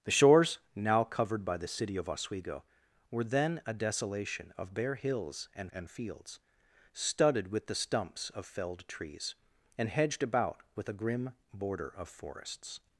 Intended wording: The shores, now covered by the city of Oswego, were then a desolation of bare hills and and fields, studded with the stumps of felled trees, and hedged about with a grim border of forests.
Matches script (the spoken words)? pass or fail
pass